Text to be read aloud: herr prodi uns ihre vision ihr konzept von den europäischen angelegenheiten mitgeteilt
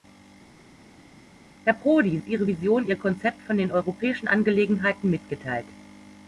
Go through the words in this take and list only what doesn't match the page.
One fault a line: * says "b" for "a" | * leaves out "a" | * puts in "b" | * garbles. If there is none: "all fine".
all fine